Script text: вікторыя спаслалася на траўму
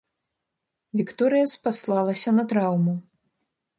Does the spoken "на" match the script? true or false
true